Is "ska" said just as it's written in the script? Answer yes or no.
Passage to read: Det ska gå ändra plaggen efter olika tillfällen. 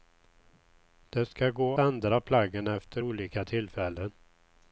yes